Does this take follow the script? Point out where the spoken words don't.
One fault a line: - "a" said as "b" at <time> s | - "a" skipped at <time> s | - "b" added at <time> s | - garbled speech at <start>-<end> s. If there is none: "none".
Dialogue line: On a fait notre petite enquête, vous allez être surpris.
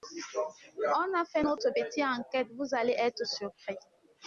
none